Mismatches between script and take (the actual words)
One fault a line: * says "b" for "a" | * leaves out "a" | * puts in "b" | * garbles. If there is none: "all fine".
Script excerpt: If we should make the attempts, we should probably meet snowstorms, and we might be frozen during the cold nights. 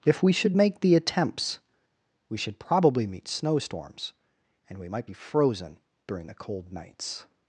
all fine